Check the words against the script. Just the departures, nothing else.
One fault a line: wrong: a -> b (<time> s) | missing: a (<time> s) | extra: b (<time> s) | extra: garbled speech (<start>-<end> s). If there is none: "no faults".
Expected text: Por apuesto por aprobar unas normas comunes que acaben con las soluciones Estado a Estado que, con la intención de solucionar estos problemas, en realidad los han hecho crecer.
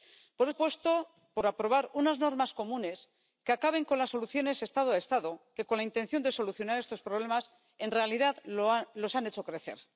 no faults